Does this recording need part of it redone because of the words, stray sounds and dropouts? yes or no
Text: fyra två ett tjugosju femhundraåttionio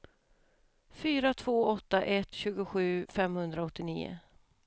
yes